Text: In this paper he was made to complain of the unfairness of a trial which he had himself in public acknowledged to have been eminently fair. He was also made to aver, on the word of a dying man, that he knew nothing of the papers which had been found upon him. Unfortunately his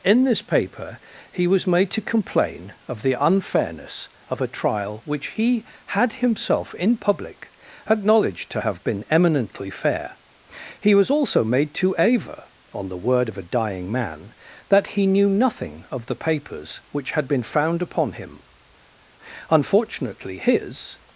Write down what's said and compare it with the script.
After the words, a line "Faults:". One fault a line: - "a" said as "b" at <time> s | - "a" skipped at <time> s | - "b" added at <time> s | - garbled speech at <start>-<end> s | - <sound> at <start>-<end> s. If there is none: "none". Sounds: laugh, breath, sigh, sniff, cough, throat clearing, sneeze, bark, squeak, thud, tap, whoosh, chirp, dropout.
In this paper he was made to complain of the unfairness of a trial which he had himself in public acknowledged to have been eminently fair. He was also made to aver, on the word of a dying man, that he knew nothing of the papers which had been found upon him. Unfortunately his
Faults:
none